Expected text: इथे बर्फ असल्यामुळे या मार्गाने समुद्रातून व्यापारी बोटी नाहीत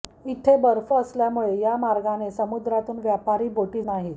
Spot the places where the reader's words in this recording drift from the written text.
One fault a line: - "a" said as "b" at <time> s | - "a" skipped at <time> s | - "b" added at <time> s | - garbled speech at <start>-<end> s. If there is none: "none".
none